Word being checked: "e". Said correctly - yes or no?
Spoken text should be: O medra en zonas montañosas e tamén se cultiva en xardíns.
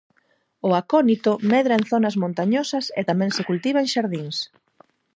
yes